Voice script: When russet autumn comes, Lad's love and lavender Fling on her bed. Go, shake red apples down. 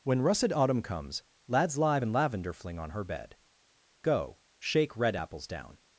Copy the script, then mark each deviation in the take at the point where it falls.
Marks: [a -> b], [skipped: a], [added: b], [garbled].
When russet autumn comes, Lad's [love -> live] and lavender Fling on her bed. Go, shake red apples down.